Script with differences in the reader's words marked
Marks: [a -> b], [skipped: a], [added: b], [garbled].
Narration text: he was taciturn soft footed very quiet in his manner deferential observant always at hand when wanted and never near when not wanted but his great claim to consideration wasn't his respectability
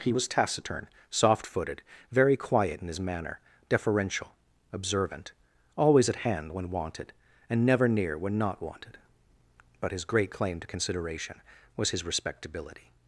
he was taciturn soft footed very quiet in his manner deferential observant always at hand when wanted and never near when not wanted but his great claim to consideration [wasn't -> was] his respectability